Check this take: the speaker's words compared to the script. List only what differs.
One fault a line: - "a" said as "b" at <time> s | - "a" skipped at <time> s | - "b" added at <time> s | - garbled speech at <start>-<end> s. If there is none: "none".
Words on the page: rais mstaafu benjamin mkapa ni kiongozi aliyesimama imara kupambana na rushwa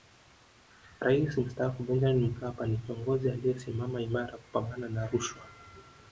none